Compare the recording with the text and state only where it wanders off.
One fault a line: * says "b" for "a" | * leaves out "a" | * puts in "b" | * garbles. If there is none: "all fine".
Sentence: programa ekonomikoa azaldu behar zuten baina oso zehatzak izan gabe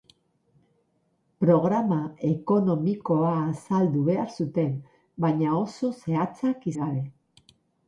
* leaves out "izan"